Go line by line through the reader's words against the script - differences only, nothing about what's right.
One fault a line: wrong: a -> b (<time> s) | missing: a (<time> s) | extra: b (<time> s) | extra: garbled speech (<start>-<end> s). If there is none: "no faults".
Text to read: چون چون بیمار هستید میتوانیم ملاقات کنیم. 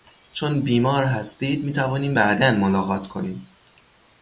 missing: چون (0.6 s)
extra: بعدا (2.1 s)